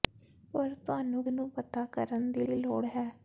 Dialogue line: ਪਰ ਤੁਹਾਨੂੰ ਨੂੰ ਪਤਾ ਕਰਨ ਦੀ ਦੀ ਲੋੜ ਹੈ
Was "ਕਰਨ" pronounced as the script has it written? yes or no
yes